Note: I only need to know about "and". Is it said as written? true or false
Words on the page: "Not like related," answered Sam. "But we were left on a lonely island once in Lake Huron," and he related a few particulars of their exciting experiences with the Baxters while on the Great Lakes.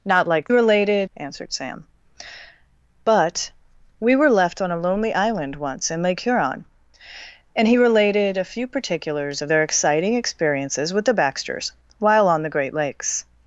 true